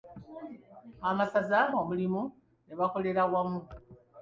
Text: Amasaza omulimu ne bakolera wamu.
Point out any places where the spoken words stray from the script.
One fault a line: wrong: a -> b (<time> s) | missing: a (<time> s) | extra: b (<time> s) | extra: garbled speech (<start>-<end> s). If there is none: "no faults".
no faults